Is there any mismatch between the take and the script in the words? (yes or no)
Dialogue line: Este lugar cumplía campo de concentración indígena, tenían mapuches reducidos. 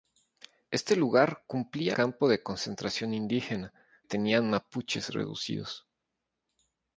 no